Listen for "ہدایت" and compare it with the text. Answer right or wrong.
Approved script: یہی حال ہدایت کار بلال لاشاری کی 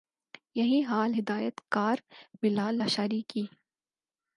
right